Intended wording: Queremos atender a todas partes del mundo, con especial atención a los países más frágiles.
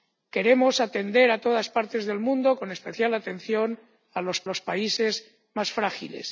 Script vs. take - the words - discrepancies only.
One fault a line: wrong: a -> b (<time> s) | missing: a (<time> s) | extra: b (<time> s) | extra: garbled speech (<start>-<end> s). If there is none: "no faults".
extra: los (4.5 s)